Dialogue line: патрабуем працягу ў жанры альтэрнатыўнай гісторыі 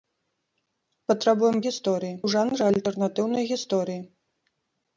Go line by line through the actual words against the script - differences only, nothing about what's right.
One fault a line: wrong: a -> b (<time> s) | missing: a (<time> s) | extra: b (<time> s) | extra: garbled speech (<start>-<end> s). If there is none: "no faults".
wrong: працягу -> гісторыі (1.7 s)